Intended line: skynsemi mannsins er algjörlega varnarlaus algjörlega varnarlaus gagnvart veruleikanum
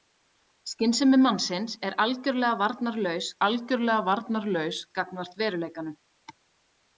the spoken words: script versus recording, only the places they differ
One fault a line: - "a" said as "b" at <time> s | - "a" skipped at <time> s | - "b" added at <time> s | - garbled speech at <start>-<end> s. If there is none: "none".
none